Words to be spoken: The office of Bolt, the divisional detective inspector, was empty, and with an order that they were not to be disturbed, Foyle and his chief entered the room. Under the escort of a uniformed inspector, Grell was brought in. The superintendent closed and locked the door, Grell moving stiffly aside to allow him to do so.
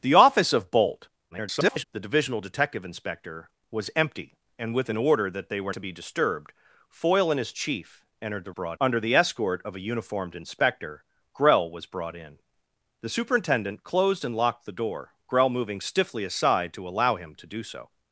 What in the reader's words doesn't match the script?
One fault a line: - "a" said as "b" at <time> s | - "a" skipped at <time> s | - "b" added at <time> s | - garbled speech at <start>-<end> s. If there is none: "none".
- garbled speech at 1.3-1.8 s
- "not" skipped at 5.7 s
- "room" said as "brought" at 8.5 s